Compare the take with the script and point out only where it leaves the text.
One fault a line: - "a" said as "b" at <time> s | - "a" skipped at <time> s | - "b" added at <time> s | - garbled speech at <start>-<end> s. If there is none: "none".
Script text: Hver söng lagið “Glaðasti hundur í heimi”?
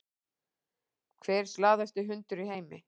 - "söng lagið" skipped at 1.5 s